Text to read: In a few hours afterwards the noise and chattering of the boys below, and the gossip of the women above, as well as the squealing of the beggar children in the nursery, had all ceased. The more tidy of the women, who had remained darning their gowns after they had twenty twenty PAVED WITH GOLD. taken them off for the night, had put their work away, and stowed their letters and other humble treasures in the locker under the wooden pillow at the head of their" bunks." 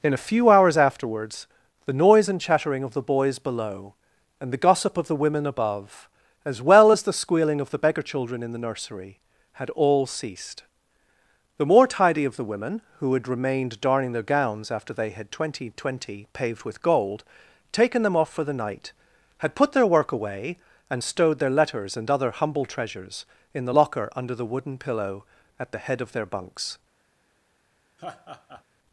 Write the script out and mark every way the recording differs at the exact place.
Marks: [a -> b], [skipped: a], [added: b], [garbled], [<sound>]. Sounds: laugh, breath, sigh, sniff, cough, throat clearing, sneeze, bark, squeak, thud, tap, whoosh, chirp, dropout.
In a few hours afterwards the noise and chattering of the boys below, and the gossip of the women above, as well as the squealing of the beggar children in the nursery, had all ceased. The more tidy of the women, who had remained darning their gowns after they had twenty twenty PAVED WITH GOLD. taken them off for the night, had put their work away, and stowed their letters and other humble treasures in the locker under the wooden pillow at the head of their" bunks." [laugh]